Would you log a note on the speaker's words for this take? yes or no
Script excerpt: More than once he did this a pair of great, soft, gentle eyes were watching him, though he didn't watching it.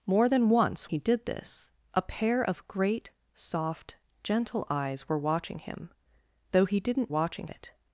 no